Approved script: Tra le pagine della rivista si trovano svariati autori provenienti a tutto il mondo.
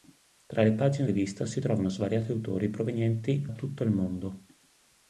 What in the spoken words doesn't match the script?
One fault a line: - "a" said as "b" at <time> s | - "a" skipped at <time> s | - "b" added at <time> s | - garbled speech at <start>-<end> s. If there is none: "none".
- "della" skipped at 1.1 s
- "a" skipped at 3.4 s